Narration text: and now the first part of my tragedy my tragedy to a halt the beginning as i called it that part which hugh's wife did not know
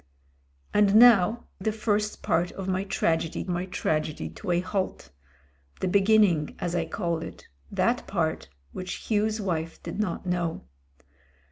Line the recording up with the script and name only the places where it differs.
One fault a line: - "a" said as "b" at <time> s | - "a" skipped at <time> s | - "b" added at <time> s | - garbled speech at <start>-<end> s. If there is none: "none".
none